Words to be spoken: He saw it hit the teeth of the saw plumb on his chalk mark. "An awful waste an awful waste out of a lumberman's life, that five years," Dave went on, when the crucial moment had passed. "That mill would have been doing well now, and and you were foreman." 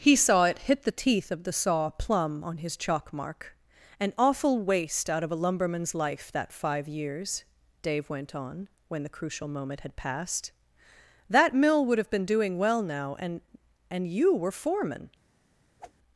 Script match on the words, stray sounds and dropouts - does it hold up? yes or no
no